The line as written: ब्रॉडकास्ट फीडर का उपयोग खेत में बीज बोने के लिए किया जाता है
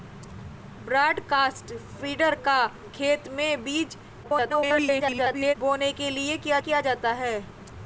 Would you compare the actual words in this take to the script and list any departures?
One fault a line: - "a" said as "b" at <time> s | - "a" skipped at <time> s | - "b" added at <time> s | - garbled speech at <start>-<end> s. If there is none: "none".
- "उपयोग" skipped at 2.6 s
- garbled speech at 4.2-5.6 s
- "किया" added at 6.6 s